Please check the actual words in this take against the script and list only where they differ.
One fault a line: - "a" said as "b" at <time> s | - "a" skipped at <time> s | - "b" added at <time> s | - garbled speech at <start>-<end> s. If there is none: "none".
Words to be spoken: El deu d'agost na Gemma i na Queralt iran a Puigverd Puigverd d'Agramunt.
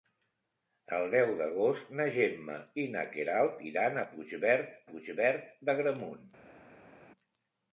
none